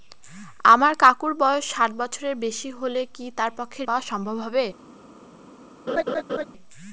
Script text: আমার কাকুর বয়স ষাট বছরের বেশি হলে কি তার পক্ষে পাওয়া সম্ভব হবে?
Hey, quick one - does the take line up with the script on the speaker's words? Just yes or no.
yes